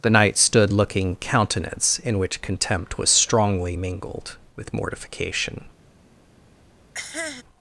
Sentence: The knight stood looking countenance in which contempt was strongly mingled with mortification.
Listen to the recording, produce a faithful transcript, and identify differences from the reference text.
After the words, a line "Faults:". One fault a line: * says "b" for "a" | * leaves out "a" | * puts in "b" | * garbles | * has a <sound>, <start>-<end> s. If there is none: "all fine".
The knight stood looking countenance in which contempt was strongly mingled with mortification.
Faults:
* has a cough, 6.9-7.4 s